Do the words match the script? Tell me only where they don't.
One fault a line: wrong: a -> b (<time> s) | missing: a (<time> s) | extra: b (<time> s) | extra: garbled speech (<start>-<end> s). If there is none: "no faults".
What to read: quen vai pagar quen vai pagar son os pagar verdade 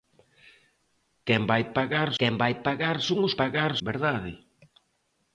no faults